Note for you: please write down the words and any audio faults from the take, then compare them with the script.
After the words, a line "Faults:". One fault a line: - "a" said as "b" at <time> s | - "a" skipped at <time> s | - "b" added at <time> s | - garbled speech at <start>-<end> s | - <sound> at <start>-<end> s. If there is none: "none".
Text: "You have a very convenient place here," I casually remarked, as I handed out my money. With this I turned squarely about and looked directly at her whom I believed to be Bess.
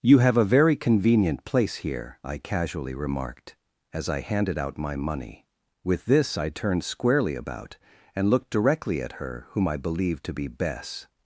"You have a very convenient place here," I casually remarked, as I handed out my money. With this I turned squarely about and looked directly at her whom I believed to be Bess.
Faults:
none